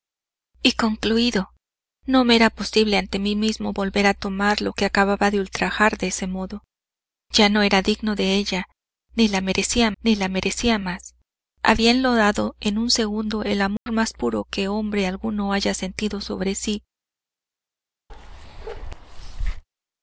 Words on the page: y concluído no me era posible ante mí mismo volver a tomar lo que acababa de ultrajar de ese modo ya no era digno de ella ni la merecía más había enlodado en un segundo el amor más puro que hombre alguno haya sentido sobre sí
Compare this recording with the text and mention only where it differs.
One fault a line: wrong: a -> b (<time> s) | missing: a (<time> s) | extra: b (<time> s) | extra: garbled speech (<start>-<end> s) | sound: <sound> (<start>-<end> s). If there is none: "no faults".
extra: ni la merecía (10.0 s)
sound: dropout (13.8-13.9 s)
sound: bark (18.1-19.6 s)